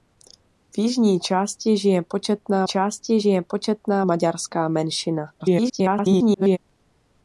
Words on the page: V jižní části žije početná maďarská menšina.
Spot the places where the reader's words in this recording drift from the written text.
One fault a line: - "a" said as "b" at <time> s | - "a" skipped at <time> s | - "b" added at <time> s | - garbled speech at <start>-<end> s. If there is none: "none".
- "části žije početná" added at 2.6 s
- garbled speech at 5.4-6.6 s